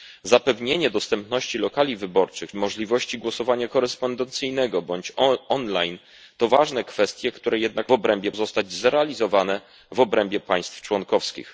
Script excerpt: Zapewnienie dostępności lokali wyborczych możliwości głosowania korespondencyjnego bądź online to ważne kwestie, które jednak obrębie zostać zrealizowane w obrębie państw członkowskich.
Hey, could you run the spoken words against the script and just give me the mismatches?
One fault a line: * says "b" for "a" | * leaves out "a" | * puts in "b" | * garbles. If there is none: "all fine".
all fine